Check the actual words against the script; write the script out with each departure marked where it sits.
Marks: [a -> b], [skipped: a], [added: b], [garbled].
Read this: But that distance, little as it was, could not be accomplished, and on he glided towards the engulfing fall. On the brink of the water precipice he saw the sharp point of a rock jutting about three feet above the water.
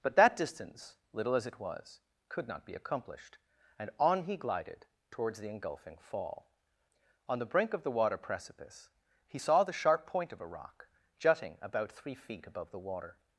But that distance, little as it was, could not be accomplished, and on he glided towards the engulfing fall. On the brink of the water precipice he saw the sharp point of a rock jutting about three feet above the water.